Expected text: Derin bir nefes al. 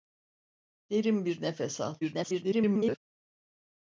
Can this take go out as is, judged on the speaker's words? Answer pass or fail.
fail